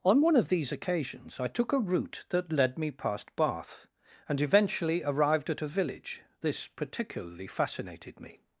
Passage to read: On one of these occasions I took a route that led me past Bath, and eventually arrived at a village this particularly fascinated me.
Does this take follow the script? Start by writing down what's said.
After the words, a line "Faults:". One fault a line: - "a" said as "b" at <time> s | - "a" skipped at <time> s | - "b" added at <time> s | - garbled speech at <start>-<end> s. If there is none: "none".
On one of these occasions I took a route that led me past Bath, and eventually arrived at a village this particularly fascinated me.
Faults:
none